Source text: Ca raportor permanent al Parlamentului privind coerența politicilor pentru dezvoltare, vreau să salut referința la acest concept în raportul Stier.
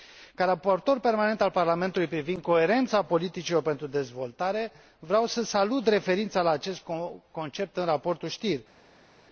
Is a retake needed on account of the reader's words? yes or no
no